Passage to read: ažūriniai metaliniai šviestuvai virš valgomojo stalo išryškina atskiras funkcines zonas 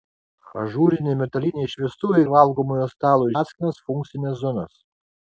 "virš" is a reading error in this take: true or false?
true